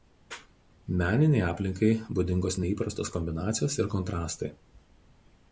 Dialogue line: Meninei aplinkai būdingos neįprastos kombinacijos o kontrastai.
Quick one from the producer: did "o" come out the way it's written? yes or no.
no